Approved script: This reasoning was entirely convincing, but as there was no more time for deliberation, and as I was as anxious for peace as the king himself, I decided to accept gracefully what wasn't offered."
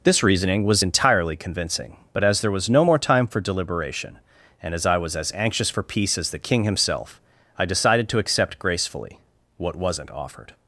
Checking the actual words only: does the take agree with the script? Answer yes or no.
yes